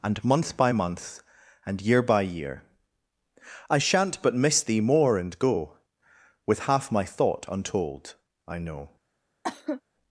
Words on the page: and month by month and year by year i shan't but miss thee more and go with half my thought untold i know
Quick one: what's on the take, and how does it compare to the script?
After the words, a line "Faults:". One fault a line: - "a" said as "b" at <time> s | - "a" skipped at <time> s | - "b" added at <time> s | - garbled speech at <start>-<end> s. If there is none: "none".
and month by month and year by year i shan't but miss thee more and go with half my thought untold i know
Faults:
none